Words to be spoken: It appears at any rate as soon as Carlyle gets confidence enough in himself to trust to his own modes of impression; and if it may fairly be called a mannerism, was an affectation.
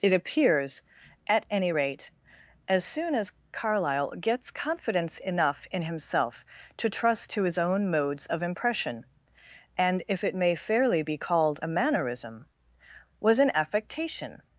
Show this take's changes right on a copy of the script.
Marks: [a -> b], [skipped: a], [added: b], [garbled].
It appears at any rate as soon as Carlyle gets confidence enough in himself to trust to his own modes of impression; and if it may fairly be called a mannerism, was an affectation.